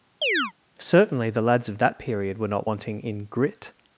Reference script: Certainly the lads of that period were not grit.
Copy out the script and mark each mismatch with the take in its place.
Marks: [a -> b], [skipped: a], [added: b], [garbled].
Certainly the lads of that period were not [added: wanting in] grit.